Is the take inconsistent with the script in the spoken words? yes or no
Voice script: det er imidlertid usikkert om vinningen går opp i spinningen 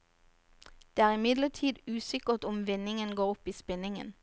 no